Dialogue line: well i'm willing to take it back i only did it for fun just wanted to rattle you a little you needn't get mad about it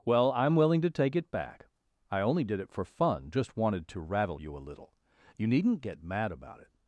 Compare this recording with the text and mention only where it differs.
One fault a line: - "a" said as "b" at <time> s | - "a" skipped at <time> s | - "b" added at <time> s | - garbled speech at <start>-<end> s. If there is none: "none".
none